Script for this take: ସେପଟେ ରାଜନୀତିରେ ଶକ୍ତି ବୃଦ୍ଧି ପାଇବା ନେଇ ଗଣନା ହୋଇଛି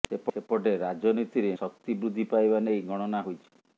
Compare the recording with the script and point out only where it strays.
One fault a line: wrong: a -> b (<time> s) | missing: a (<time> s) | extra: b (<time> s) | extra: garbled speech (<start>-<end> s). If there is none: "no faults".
no faults